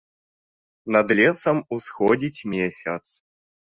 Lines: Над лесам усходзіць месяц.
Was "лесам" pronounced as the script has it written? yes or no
yes